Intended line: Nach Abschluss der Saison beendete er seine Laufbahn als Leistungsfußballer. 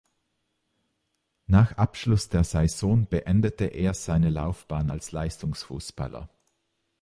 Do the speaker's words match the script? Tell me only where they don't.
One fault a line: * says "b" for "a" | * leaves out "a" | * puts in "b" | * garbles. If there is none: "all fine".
all fine